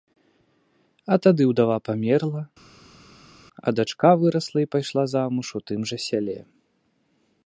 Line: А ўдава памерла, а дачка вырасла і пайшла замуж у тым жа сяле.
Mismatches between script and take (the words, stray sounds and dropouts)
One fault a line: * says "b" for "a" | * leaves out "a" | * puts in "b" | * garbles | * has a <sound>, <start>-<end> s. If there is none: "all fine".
* puts in "тады"